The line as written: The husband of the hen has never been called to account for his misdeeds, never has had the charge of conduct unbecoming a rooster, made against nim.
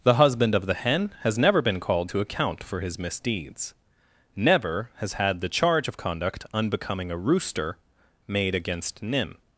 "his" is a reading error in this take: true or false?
false